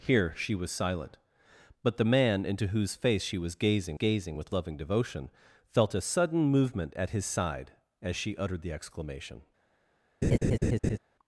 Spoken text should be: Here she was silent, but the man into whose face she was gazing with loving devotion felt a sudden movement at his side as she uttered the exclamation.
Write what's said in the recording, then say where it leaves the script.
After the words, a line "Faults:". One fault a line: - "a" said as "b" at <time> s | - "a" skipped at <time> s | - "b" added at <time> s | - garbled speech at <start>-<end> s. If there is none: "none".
Here she was silent, but the man into whose face she was gazing gazing with loving devotion felt a sudden movement at his side as she uttered the exclamation.
Faults:
- "gazing" added at 3.9 s